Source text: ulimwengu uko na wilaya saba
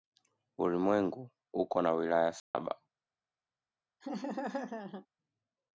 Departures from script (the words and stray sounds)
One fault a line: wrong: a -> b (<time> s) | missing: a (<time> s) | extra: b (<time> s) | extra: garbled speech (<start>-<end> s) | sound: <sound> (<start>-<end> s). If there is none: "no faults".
sound: dropout (2.4-2.5 s)
sound: laugh (4.0-5.1 s)